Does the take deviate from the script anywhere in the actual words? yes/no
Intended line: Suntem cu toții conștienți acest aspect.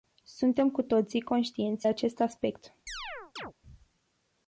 no